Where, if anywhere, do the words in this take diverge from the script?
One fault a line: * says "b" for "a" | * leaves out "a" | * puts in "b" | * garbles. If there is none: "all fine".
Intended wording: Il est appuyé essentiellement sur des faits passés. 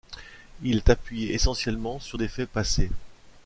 all fine